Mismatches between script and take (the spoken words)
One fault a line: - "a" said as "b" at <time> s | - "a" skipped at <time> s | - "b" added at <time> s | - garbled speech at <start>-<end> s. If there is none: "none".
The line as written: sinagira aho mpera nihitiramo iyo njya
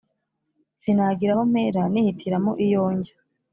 none